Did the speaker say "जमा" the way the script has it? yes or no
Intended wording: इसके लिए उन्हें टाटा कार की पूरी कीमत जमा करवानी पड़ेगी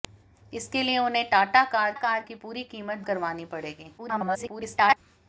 no